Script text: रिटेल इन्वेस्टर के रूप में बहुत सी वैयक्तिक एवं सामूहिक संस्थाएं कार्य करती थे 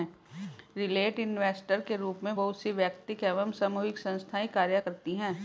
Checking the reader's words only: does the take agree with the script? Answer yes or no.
no